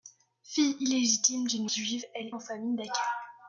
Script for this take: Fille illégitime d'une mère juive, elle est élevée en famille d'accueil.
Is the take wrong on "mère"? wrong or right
wrong